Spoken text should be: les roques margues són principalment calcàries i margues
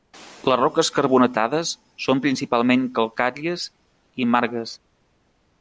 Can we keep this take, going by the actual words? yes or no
no